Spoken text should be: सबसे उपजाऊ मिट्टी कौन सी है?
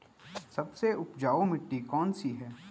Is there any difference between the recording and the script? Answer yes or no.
no